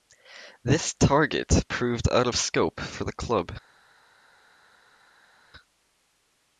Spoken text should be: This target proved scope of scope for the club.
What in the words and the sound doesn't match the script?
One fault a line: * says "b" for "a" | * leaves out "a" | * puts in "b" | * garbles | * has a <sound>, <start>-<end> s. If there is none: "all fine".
* says "out" for "scope"